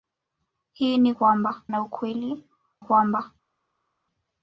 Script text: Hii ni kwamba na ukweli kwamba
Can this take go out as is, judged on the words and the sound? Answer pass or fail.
pass